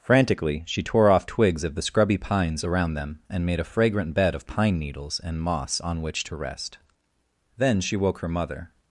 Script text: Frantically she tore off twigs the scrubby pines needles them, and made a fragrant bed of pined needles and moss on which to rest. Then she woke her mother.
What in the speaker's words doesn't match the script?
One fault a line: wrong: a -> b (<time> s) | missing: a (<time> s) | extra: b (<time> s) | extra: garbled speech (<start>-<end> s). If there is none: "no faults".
extra: of (1.6 s)
wrong: needles -> around (2.6 s)
wrong: pined -> pine (4.5 s)